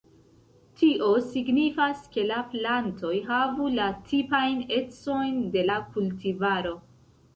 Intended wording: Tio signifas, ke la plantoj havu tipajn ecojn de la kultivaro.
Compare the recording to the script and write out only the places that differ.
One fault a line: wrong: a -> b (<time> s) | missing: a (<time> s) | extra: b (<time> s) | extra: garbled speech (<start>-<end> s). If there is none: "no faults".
extra: la (3.8 s)